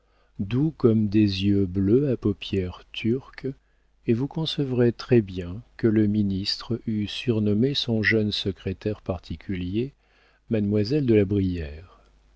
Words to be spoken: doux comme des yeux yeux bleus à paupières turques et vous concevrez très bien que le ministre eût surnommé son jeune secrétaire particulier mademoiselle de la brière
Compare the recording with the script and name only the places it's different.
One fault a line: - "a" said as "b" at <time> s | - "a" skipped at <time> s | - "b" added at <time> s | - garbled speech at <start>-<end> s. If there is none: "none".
- "yeux" skipped at 1.7 s